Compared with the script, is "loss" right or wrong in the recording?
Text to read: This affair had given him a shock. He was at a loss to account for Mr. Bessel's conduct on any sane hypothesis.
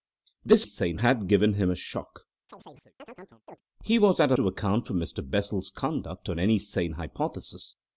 wrong